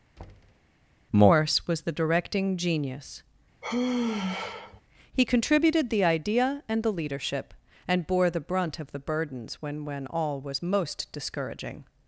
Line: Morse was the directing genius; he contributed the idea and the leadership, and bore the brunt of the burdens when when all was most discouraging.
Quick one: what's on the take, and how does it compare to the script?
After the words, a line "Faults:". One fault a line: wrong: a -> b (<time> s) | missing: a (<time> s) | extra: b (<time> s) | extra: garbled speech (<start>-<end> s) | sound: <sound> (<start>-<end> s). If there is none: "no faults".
Morse was the directing genius; he contributed the idea and the leadership, and bore the brunt of the burdens when when all was most discouraging.
Faults:
sound: thud (0.2-0.7 s)
sound: sigh (3.6-4.8 s)